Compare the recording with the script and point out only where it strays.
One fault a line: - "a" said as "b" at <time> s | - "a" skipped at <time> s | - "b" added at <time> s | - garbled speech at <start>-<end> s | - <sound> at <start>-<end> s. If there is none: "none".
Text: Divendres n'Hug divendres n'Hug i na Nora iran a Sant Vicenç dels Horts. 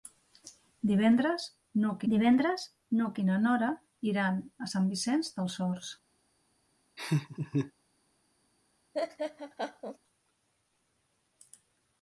- laugh at 7.0-7.7 s
- laugh at 8.9-10.0 s